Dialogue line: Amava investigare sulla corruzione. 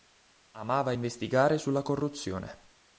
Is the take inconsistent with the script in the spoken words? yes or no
no